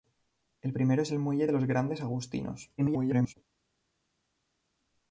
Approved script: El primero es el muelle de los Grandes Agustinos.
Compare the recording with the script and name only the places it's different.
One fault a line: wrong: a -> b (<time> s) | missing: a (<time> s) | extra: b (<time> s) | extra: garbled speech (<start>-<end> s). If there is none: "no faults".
extra: garbled speech (2.8-3.3 s)